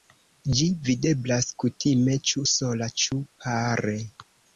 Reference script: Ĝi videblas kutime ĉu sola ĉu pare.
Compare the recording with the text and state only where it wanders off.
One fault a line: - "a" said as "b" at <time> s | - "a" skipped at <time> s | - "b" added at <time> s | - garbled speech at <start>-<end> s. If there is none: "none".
none